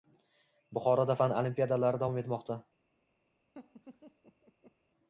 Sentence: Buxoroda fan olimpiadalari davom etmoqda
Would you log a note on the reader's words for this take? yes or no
no